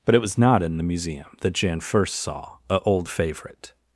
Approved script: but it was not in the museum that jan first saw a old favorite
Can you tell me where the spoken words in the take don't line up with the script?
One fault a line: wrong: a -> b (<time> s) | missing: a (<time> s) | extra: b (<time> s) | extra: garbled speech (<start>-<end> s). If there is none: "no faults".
no faults